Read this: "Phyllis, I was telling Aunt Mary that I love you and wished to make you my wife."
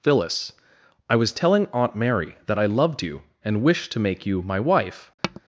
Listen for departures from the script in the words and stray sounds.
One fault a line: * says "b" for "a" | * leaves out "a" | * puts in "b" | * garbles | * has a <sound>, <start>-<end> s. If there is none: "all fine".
* says "loved" for "love"
* has a tap, 5.2-5.4 s